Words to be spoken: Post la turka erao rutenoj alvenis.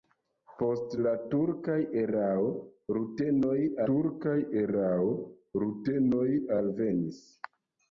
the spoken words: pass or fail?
fail